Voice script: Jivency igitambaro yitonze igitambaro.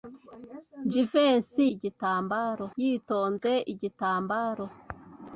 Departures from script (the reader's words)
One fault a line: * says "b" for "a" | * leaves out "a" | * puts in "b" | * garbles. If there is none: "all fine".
all fine